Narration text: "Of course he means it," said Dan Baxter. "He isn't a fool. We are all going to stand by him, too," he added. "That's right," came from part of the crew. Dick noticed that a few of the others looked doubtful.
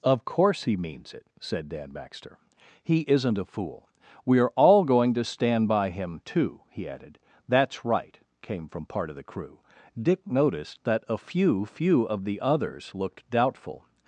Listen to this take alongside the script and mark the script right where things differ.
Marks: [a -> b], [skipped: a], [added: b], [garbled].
"Of course he means it," said Dan Baxter. "He isn't a fool. We are all going to stand by him, too," he added. "That's right," came from part of the crew. Dick noticed that a few [added: few] of the others looked doubtful.